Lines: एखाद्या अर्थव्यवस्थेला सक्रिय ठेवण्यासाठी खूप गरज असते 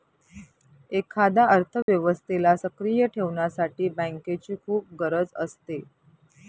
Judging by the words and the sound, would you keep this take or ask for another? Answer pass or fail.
fail